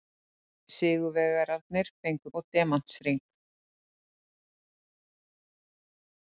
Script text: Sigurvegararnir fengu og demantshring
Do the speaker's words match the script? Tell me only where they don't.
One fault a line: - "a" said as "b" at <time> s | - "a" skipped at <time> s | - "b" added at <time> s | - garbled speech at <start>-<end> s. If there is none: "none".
none